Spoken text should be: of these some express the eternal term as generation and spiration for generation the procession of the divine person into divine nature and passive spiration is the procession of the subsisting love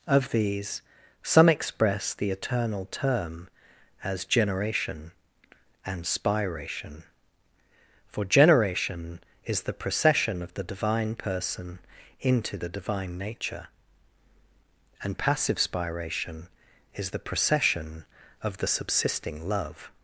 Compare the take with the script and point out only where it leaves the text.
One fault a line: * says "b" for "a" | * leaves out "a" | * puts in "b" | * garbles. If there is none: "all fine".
* puts in "is"
* puts in "the"